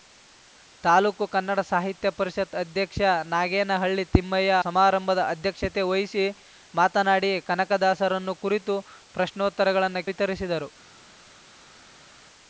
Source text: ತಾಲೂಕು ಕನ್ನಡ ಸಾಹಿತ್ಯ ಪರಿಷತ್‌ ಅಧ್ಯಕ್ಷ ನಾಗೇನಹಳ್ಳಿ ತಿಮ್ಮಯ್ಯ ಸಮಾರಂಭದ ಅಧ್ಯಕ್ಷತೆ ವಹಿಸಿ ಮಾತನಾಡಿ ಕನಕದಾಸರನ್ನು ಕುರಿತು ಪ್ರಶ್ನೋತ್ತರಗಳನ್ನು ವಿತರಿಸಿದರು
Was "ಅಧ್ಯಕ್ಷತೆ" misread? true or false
false